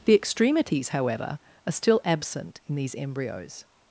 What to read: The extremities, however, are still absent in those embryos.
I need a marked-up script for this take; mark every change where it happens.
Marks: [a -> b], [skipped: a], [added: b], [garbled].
The extremities, however, are still absent in [those -> these] embryos.